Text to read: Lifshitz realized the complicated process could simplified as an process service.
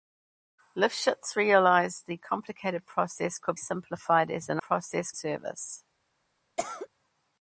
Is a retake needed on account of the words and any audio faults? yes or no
yes